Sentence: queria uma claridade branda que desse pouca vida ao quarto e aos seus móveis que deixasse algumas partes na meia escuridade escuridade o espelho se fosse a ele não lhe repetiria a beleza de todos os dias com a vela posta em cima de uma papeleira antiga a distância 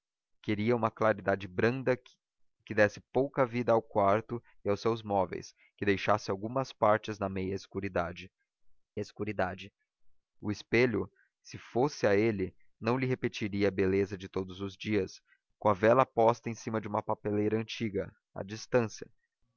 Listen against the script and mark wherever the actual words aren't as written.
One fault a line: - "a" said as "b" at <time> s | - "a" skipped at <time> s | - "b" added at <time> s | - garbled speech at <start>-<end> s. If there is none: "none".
none